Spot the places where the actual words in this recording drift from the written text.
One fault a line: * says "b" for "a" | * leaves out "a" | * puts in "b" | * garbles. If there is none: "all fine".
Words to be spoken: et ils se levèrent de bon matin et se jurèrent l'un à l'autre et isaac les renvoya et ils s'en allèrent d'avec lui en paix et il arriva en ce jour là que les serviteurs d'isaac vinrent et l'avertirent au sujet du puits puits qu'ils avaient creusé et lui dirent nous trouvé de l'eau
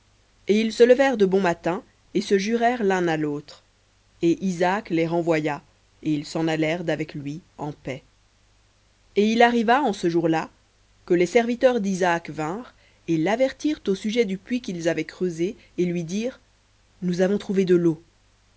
* leaves out "puits"
* puts in "avons"